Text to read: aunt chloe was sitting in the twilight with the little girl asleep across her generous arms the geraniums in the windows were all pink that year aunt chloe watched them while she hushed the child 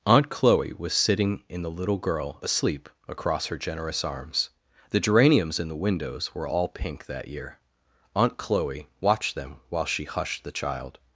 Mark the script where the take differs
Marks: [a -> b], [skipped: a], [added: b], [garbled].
aunt chloe was sitting in the [skipped: twilight with the] little girl asleep across her generous arms the geraniums in the windows were all pink that year aunt chloe watched them while she hushed the child